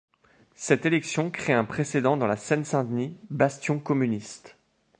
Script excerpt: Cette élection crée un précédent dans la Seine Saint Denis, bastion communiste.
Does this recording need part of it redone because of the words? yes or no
no